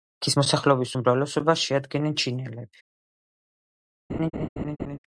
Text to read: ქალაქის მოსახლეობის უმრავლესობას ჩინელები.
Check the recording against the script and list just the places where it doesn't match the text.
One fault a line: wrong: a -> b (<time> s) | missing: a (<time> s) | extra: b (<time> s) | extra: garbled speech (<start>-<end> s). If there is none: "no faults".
extra: შეადგენენ (1.7 s)